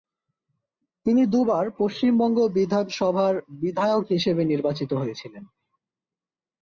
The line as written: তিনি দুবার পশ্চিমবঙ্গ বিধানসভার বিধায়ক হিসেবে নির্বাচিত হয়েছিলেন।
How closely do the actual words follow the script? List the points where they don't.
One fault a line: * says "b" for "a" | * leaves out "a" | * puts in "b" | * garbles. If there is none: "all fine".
all fine